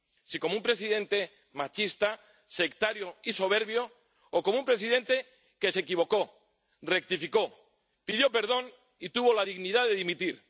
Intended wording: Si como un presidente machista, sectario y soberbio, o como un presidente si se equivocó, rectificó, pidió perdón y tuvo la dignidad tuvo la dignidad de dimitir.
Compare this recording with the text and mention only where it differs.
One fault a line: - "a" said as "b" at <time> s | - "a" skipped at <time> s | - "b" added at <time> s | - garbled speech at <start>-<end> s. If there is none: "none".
- "si" said as "que" at 5.6 s
- "tuvo la dignidad" skipped at 9.9 s